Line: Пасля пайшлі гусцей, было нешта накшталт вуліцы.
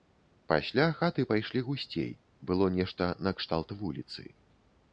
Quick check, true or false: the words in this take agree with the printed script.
false